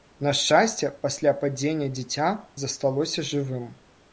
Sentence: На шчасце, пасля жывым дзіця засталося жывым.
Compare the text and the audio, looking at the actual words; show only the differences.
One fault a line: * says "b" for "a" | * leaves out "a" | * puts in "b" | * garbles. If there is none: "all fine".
* says "падзення" for "жывым"